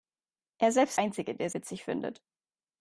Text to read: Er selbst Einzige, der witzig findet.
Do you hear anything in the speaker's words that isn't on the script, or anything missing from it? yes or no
no